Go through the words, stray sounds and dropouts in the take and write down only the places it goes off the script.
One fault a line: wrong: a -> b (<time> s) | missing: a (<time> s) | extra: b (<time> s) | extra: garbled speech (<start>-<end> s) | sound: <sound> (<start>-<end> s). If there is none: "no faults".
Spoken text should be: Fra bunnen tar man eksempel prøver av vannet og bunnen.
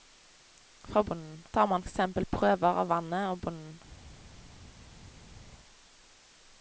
no faults